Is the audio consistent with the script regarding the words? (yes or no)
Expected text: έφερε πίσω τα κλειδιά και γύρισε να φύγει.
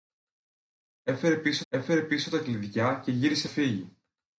no